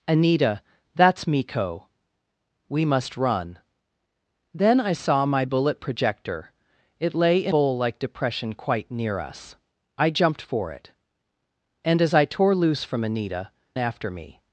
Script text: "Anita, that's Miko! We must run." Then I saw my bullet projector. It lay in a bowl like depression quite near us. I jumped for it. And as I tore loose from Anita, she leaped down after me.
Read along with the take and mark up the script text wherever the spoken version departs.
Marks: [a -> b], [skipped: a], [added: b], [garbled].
"Anita, that's Miko! We must run." Then I saw my bullet projector. It lay in [skipped: a] bowl like depression quite near us. I jumped for it. And as I tore loose from Anita, [skipped: she leaped down] after me.